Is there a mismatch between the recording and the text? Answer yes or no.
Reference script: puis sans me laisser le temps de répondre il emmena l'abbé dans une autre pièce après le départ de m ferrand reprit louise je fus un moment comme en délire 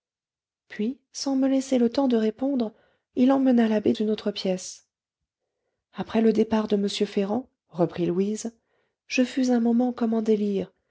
yes